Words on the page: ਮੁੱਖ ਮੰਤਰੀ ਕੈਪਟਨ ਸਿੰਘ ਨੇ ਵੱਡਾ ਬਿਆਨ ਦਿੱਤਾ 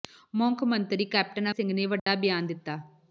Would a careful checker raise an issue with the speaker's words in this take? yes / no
no